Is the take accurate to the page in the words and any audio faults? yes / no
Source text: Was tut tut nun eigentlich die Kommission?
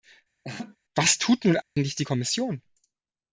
no